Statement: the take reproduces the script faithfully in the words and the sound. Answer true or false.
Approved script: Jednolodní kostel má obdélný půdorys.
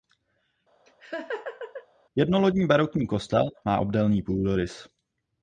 false